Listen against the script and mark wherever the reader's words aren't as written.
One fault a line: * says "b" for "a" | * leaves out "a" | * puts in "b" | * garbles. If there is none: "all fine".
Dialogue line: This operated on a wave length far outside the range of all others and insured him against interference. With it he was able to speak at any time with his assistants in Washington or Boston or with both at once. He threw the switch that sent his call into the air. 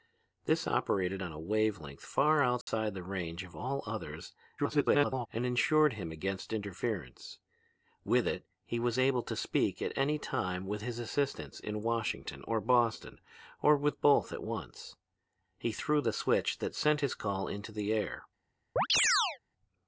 * garbles